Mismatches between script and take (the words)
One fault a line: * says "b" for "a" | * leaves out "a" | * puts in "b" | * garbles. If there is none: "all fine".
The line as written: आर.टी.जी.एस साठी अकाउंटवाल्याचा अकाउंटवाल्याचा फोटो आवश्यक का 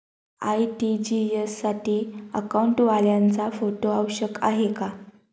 * leaves out "अकाउंटवाल्याचा"
* puts in "आहे"